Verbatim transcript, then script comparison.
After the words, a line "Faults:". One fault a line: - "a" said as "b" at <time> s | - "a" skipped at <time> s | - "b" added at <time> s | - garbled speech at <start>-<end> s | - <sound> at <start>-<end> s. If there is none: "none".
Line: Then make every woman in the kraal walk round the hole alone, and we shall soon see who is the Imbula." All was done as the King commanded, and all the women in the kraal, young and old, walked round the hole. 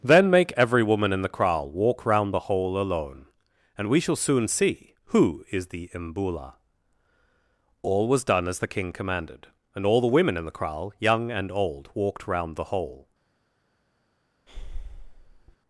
Then make every woman in the kraal walk round the hole alone, and we shall soon see who is the Imbula." All was done as the King commanded, and all the women in the kraal, young and old, walked round the hole.
Faults:
- breath at 14.5-15.6 s